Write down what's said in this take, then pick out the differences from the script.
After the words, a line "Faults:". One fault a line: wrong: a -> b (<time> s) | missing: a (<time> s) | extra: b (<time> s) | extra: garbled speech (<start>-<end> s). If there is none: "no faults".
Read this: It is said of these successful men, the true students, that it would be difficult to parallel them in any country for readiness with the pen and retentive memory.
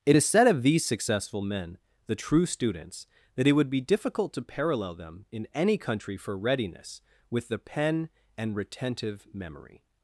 It is said of these successful men, the true students, that it would be difficult to parallel them in any country for readiness with the pen and retentive memory.
Faults:
no faults